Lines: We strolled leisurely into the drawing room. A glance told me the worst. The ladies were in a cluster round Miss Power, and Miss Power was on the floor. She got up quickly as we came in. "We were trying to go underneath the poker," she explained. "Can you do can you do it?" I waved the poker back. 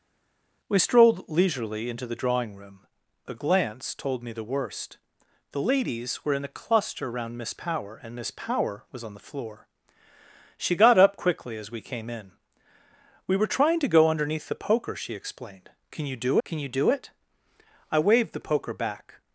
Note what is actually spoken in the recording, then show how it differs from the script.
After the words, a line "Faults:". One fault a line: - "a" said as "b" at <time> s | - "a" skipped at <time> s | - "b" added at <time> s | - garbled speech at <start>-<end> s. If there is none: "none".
We strolled leisurely into the drawing room. A glance told me the worst. The ladies were in a cluster round Miss Power, and Miss Power was on the floor. She got up quickly as we came in. "We were trying to go underneath the poker," she explained. "Can you do can you do it?" I waved the poker back.
Faults:
none